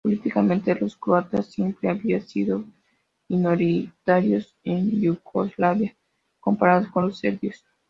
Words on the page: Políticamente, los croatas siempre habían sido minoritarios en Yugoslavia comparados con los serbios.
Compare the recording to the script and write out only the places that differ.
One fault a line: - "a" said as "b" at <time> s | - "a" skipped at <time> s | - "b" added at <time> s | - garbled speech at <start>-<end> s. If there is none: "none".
none